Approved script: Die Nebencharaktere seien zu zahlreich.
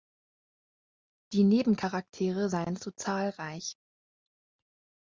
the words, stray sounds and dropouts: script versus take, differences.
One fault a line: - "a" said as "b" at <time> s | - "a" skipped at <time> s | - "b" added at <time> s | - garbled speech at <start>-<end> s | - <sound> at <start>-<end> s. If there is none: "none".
none